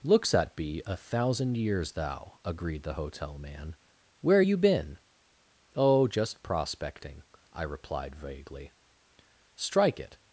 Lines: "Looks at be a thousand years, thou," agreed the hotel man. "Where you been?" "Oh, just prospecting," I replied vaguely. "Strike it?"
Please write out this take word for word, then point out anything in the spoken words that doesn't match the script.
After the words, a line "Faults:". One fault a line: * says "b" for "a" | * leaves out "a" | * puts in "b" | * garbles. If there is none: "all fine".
"Looks at be a thousand years, thou," agreed the hotel man. "Where you been?" "Oh, just prospecting," I replied vaguely. "Strike it?"
Faults:
all fine